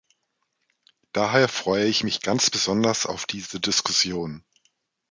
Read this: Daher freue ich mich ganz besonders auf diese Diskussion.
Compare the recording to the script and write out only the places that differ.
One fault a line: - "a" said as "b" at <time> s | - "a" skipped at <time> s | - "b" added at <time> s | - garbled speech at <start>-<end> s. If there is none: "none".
none